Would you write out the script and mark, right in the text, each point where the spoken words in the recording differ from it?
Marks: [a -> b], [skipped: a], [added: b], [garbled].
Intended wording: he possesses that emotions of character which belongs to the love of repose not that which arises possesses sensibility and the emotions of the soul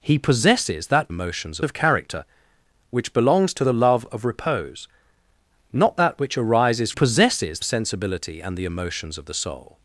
he possesses that emotions of character which belongs to the love of repose not that which arises possesses sensibility and the emotions of the soul